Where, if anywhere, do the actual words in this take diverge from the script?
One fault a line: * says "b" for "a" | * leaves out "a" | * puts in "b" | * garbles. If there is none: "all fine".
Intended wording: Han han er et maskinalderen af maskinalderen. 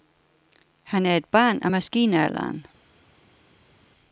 * leaves out "han"
* says "barn" for "maskinalderen"